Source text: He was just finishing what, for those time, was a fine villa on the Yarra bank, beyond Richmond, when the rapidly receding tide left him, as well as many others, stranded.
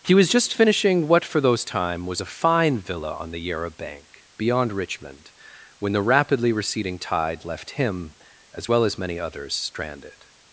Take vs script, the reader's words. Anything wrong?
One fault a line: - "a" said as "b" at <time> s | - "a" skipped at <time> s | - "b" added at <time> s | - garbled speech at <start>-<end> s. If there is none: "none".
none